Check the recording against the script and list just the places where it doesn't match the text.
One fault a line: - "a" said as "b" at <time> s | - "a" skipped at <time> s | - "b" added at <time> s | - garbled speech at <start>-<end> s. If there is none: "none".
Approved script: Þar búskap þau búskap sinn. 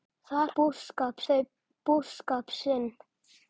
none